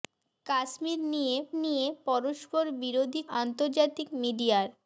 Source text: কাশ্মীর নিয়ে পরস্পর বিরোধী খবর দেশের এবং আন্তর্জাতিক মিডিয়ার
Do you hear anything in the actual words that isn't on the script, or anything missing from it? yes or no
yes